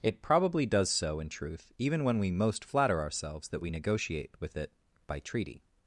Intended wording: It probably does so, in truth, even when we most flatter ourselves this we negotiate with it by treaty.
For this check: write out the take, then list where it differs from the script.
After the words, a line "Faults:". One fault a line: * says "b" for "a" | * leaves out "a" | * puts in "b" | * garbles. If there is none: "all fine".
It probably does so, in truth, even when we most flatter ourselves that we negotiate with it by treaty.
Faults:
* says "that" for "this"